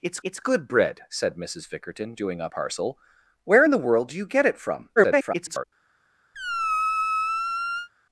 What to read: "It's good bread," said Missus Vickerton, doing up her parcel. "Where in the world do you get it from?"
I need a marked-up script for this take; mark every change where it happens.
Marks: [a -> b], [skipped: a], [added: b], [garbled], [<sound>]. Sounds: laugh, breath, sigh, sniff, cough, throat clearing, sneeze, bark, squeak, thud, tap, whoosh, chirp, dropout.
"It's [added: it's] good bread," said Missus Vickerton, doing up [skipped: her] parcel. "Where in the world do you get it from?" [garbled] [squeak]